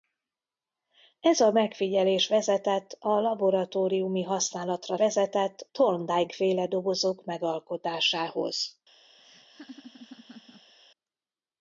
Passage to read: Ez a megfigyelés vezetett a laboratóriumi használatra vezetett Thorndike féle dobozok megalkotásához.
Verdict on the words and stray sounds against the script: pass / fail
fail